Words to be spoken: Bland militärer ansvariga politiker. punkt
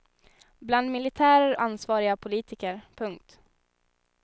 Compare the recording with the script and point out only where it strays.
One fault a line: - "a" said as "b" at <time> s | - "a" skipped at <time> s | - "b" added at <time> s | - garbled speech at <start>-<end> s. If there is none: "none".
none